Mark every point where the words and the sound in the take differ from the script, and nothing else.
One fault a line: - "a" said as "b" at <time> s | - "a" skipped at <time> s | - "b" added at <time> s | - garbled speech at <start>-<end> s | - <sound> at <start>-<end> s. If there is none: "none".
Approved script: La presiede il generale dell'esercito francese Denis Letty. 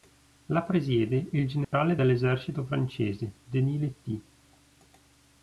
- dropout at 1.6-1.7 s